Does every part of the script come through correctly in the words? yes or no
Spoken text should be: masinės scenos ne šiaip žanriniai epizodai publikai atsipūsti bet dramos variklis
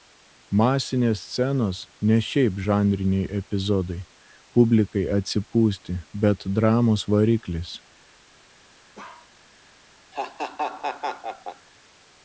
yes